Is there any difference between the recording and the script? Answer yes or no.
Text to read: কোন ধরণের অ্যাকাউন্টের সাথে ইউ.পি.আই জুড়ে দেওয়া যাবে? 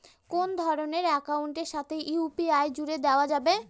no